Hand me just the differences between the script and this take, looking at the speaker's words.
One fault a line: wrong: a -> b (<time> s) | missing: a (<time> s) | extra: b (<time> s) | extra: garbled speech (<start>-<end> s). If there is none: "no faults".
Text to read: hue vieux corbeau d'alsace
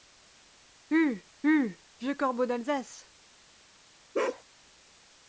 extra: hue (1.4 s)